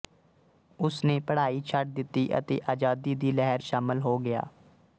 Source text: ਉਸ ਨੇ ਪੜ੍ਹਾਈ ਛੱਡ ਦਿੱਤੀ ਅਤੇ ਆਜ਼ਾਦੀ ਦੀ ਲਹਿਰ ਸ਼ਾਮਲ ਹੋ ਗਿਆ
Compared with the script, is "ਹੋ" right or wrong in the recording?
right